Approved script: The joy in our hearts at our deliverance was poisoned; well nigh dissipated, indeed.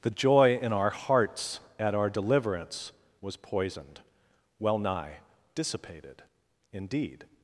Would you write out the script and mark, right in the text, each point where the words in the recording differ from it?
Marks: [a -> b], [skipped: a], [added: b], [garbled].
The joy in our hearts at our deliverance was poisoned; well nigh dissipated, indeed.